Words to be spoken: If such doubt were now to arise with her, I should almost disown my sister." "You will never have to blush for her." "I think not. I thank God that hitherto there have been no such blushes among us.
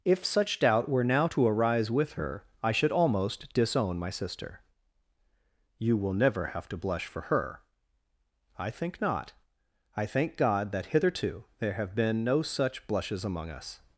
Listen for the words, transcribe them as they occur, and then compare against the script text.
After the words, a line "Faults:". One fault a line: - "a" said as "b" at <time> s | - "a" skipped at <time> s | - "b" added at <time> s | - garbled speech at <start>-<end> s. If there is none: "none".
If such doubt were now to arise with her, I should almost disown my sister." "You will never have to blush for her." "I think not. I thank God that hitherto there have been no such blushes among us.
Faults:
none